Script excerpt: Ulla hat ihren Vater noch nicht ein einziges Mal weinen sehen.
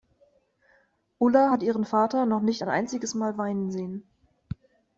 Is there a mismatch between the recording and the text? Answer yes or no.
no